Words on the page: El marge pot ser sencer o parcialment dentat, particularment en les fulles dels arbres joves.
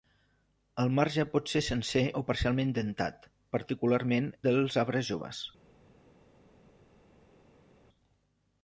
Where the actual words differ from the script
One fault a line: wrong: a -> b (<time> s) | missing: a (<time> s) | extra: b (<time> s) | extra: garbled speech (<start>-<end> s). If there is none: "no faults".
missing: en les fulles (4.3 s)